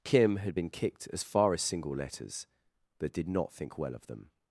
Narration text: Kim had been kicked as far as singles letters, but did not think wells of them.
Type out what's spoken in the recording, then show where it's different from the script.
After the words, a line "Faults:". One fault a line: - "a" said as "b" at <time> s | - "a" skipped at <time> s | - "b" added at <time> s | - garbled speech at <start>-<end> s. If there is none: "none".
Kim had been kicked as far as single letters, but did not think well of them.
Faults:
- "singles" said as "single" at 1.6 s
- "wells" said as "well" at 3.8 s